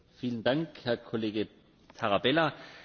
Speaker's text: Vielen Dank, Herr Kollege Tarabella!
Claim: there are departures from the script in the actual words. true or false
false